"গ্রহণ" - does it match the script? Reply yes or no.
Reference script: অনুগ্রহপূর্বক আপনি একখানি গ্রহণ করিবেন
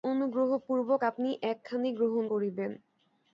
yes